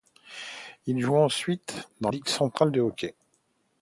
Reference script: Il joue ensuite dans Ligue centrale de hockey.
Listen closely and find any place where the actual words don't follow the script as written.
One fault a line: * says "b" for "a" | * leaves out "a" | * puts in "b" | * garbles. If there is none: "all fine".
all fine